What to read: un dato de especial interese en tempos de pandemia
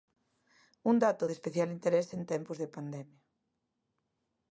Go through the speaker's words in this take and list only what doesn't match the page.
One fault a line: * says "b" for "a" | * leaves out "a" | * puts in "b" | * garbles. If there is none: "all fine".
all fine